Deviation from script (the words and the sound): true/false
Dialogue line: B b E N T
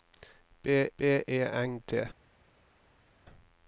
false